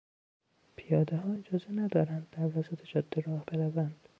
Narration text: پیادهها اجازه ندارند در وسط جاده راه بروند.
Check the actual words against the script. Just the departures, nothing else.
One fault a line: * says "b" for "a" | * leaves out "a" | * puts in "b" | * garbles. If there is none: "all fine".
all fine